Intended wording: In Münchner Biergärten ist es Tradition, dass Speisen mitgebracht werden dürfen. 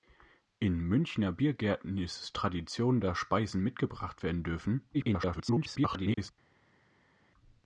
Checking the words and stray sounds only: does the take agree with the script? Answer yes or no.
no